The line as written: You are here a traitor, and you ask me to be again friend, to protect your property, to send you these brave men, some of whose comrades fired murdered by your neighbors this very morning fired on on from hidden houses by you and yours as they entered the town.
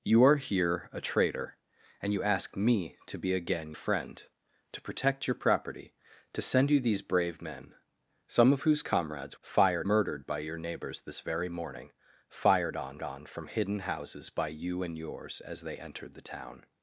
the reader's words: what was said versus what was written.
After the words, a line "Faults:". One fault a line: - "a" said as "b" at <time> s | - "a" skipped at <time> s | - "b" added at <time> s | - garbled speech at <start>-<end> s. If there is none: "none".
You are here a traitor, and you ask me to be again friend, to protect your property, to send you these brave men, some of whose comrades fired murdered by your neighbors this very morning fired on on from hidden houses by you and yours as they entered the town.
Faults:
none